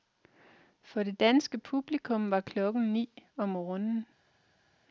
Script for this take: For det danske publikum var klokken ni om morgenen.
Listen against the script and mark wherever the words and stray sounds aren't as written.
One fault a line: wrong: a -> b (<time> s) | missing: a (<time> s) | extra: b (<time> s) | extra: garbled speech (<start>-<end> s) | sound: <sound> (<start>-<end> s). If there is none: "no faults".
no faults